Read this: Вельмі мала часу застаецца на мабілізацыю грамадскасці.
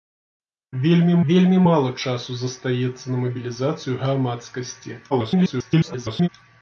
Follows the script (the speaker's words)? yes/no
no